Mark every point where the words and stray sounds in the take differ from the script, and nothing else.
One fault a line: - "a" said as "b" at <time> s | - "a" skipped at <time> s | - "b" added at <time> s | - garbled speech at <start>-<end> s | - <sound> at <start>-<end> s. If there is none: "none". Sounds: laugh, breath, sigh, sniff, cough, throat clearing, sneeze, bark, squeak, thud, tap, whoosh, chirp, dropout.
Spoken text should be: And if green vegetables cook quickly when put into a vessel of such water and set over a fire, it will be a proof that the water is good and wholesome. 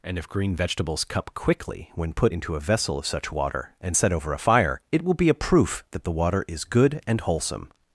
- "cook" said as "cup" at 1.0 s